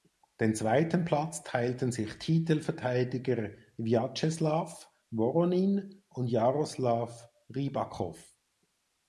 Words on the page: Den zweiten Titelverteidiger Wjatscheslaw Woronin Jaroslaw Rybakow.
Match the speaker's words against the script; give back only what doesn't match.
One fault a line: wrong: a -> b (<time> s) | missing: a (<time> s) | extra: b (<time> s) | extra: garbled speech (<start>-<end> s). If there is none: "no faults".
extra: Platz teilten sich (1.1 s)
extra: und (6.1 s)